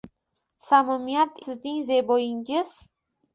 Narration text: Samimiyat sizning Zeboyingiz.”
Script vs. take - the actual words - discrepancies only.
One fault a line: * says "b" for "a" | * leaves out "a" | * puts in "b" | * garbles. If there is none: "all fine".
all fine